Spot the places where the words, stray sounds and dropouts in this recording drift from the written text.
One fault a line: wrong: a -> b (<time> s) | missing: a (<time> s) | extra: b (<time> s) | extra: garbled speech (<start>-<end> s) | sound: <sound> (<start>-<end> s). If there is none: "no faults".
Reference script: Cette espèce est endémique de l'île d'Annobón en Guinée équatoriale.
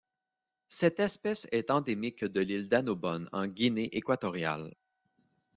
no faults